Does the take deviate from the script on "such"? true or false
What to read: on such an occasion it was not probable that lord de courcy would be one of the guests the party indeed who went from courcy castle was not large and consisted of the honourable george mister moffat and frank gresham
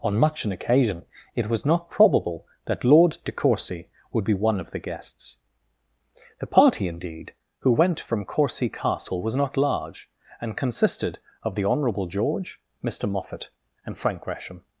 true